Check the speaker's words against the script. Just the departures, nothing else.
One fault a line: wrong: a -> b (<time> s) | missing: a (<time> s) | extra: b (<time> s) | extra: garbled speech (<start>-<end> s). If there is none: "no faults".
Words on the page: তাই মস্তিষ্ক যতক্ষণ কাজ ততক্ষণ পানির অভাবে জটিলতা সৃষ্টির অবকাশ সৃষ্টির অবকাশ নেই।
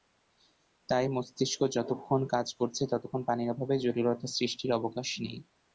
extra: করছে (2.6 s)
missing: সৃষ্টির অবকাশ (5.1 s)